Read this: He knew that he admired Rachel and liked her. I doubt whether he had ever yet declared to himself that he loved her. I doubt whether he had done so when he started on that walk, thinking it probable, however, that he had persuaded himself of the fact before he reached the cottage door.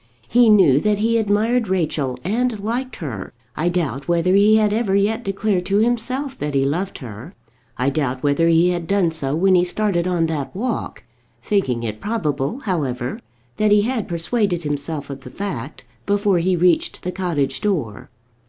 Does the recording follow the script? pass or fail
pass